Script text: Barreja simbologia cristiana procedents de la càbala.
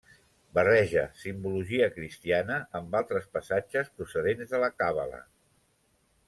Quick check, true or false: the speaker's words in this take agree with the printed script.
false